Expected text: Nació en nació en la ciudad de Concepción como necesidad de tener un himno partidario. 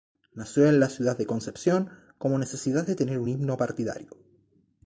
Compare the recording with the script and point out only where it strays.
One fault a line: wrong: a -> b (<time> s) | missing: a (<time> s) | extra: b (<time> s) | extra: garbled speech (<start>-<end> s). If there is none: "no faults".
missing: nació en (0.8 s)